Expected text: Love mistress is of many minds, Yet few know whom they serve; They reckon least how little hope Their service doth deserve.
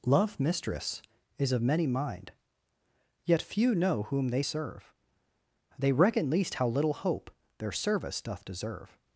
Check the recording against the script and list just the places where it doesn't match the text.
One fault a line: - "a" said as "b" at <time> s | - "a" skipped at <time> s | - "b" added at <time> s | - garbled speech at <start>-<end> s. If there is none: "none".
- "minds" said as "mind" at 1.9 s